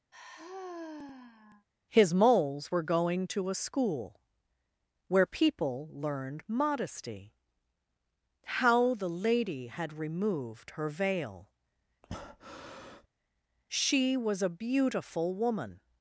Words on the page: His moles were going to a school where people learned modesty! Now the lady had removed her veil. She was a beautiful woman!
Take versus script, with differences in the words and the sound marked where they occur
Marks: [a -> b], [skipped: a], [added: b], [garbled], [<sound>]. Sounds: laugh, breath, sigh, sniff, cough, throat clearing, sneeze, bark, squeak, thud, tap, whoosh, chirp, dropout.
[sigh] His moles were going to a school where people learned modesty! [Now -> How] the lady had removed her veil. [breath] She was a beautiful woman!